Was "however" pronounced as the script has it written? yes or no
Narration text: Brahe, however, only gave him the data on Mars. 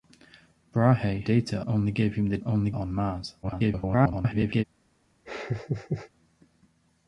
no